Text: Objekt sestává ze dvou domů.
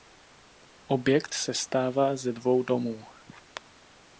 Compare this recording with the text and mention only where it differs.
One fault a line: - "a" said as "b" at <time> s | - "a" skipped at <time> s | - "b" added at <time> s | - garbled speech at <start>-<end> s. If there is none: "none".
none